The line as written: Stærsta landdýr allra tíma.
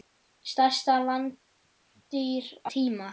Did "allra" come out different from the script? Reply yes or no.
yes